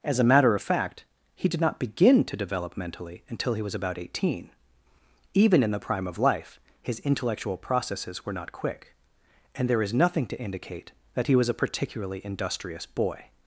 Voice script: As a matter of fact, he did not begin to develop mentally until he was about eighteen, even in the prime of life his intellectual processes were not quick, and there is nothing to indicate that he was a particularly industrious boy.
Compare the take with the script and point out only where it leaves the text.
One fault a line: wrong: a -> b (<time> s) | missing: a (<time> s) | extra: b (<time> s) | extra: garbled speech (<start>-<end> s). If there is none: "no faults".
no faults